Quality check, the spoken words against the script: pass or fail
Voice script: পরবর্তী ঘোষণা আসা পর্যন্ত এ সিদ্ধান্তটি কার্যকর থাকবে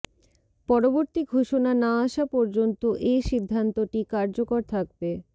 fail